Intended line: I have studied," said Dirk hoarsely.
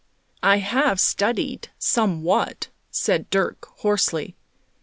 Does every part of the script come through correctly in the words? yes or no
no